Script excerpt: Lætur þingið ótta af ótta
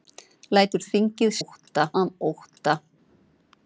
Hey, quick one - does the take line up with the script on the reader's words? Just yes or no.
yes